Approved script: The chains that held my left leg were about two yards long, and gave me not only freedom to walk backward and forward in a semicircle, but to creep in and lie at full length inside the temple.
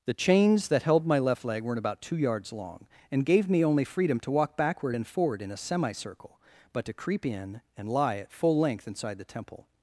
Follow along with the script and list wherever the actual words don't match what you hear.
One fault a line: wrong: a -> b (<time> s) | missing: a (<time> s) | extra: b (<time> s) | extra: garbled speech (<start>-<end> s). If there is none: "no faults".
wrong: were -> weren't (1.6 s)
missing: not (3.6 s)